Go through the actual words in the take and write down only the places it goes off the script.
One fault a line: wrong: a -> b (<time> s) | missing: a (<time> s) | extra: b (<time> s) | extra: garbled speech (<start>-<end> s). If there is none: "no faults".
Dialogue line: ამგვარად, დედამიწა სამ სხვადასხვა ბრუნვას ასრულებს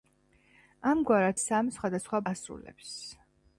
missing: დედამიწა (1.4 s)
missing: ბრუნვას (2.2 s)